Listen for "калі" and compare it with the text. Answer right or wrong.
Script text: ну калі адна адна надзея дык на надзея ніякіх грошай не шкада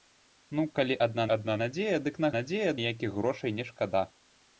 right